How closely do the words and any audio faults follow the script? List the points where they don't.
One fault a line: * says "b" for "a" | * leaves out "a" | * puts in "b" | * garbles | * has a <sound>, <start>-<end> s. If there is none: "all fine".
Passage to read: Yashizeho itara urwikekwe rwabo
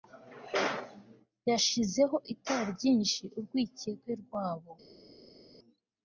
* puts in "ryinshi"